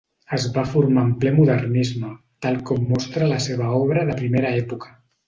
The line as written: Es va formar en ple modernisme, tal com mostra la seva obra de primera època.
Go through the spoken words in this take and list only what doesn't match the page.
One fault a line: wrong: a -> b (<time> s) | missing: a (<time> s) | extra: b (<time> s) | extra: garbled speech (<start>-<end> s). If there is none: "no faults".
no faults